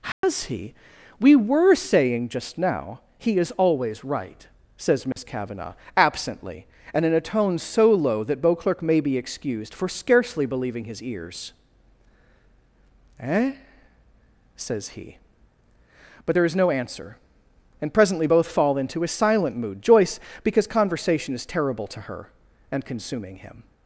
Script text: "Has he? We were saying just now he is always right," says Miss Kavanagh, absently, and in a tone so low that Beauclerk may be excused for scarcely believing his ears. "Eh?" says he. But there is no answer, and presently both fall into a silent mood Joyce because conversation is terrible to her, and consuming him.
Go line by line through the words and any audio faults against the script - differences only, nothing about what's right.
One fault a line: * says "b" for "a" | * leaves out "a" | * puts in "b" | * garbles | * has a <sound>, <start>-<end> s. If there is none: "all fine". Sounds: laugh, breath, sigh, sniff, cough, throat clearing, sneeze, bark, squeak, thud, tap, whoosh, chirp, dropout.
* has a dropout, 0.1-0.2 s
* has a dropout, 5.1-5.2 s